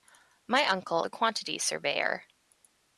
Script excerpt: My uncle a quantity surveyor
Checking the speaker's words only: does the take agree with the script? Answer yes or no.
yes